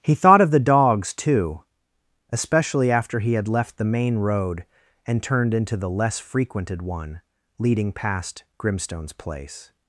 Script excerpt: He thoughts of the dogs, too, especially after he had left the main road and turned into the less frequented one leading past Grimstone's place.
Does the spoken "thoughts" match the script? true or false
false